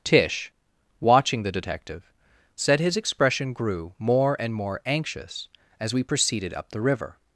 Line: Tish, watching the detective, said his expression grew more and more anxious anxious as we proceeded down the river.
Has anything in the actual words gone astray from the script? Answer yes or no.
yes